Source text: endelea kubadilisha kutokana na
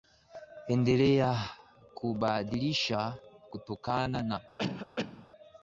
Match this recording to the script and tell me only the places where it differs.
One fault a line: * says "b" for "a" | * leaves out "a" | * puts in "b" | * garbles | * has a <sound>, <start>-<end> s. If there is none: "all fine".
* has a cough, 4.6-5.3 s